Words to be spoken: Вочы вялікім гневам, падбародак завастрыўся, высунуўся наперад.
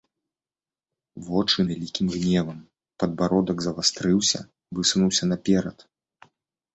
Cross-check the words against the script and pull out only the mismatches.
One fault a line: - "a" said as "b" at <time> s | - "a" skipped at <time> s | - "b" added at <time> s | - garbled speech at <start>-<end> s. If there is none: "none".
none